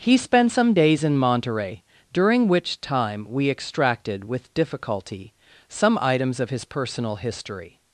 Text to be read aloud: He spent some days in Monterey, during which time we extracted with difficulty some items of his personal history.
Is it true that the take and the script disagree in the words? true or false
false